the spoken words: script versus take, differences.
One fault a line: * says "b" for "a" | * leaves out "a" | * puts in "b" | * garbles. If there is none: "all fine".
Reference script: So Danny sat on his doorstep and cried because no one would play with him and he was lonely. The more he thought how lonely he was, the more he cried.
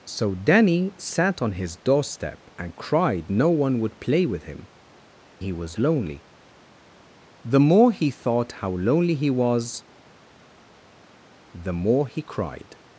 * leaves out "because"
* leaves out "and"